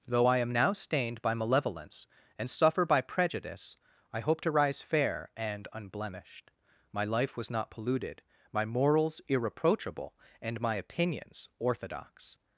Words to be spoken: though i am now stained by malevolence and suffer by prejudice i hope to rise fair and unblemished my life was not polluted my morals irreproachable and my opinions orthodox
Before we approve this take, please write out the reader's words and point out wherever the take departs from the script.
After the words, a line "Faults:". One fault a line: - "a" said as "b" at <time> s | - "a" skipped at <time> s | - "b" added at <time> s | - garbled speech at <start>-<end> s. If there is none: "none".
though i am now stained by malevolence and suffer by prejudice i hope to rise fair and unblemished my life was not polluted my morals irreproachable and my opinions orthodox
Faults:
none